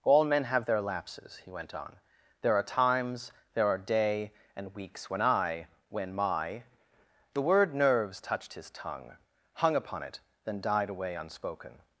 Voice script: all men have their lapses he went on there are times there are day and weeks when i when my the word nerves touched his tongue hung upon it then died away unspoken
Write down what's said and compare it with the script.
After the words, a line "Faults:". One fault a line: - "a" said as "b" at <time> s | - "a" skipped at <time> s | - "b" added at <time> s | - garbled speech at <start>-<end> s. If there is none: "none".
all men have their lapses he went on there are times there are day and weeks when i when my the word nerves touched his tongue hung upon it then died away unspoken
Faults:
none